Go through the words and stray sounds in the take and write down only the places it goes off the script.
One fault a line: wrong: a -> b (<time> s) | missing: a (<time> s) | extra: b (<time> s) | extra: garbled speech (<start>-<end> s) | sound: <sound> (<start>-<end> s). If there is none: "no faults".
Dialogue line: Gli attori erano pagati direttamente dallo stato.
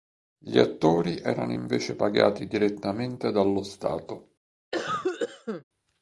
extra: invece (1.5 s)
sound: cough (4.7-5.6 s)